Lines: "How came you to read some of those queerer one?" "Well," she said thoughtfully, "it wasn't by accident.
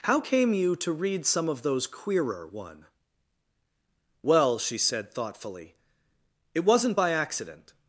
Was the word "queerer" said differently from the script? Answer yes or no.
no